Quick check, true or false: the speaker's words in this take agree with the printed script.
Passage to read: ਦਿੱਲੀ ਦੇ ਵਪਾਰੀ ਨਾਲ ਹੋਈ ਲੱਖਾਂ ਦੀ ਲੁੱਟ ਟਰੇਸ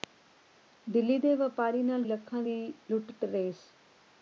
false